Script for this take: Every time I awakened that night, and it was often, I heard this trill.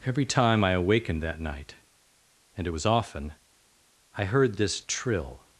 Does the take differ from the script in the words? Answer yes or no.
no